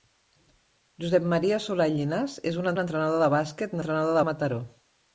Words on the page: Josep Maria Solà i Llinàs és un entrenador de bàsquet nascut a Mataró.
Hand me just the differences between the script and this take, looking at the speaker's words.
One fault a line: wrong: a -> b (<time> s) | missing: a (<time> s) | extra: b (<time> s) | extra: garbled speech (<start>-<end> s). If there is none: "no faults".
extra: un (2.7 s)
wrong: nascut -> entrenador (3.8 s)